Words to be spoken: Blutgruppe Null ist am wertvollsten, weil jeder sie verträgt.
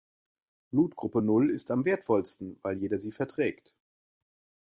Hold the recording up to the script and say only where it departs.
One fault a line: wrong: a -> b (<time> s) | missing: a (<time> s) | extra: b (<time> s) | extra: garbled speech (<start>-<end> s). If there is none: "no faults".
no faults